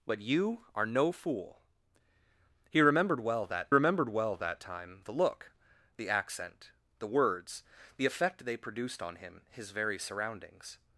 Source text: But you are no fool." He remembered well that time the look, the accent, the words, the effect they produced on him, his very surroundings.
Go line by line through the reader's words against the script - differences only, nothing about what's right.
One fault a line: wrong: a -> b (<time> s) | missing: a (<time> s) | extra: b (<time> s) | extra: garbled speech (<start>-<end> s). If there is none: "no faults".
extra: remembered well that (3.7 s)